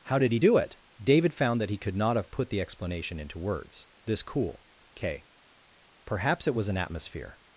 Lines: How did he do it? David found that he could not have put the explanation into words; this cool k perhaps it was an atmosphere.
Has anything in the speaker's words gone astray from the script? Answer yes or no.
no